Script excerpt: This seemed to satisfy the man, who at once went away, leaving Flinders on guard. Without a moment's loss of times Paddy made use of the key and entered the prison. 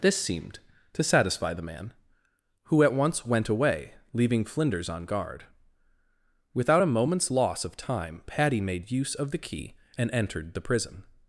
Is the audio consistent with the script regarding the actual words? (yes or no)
no